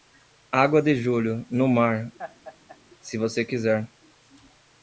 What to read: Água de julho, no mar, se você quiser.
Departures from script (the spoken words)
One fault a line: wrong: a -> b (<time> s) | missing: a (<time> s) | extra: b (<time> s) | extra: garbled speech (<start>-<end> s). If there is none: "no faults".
no faults